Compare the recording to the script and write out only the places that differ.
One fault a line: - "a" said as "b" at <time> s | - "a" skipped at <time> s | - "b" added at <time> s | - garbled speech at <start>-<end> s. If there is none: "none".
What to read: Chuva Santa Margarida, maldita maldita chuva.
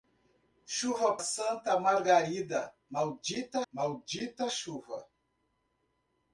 none